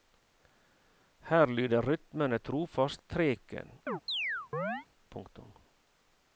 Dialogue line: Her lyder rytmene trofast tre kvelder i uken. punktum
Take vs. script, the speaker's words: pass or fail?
fail